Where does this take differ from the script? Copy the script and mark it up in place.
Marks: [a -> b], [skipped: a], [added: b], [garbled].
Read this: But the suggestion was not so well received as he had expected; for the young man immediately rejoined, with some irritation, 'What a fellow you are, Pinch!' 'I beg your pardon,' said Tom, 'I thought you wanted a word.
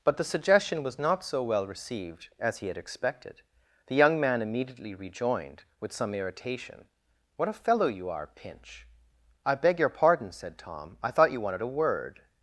But the suggestion was not so well received as he had expected; [skipped: for] the young man immediately rejoined, with some irritation, 'What a fellow you are, Pinch!' 'I beg your pardon,' said Tom, 'I thought you wanted a word.